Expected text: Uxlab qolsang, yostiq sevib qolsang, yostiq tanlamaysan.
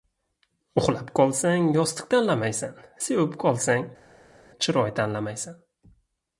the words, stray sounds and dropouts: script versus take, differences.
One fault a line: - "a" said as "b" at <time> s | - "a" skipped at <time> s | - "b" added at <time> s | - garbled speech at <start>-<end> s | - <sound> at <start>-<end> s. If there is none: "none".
- "tanlamaysan" added at 2.1 s
- "yostiq" said as "chiroy" at 4.6 s